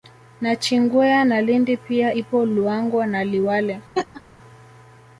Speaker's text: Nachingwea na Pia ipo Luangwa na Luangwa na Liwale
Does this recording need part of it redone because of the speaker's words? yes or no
yes